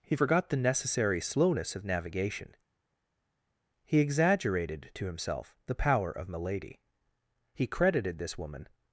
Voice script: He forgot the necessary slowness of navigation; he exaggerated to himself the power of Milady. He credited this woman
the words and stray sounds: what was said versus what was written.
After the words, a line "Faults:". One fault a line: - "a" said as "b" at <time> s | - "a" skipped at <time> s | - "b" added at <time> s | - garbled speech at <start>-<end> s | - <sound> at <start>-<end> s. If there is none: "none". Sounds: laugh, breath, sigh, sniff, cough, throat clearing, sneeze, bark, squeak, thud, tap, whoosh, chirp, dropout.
He forgot the necessary slowness of navigation; he exaggerated to himself the power of Milady. He credited this woman
Faults:
none